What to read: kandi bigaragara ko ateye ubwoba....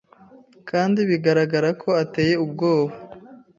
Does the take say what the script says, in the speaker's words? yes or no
yes